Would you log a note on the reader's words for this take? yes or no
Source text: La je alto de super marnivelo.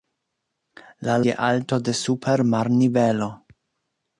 no